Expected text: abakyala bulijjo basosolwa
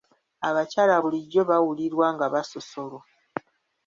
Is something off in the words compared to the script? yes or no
yes